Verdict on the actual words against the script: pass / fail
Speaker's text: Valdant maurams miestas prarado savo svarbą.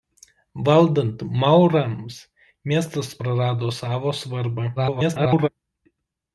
fail